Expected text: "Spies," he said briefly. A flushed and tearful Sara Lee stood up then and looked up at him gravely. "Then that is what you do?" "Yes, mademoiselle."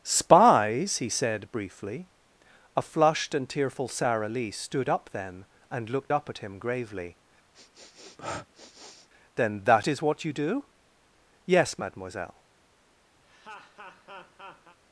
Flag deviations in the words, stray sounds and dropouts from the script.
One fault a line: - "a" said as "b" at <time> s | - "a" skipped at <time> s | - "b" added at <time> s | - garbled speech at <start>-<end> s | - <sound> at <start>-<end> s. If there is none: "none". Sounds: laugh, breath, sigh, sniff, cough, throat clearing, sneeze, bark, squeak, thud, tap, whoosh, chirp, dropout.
- sniff at 7.5-9.1 s
- laugh at 13.2-14.8 s